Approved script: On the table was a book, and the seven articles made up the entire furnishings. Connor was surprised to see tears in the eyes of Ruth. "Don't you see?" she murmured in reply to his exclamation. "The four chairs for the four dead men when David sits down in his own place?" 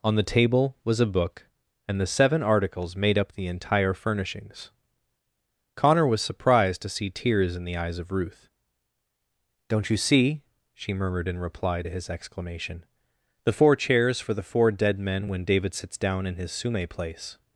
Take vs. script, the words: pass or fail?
fail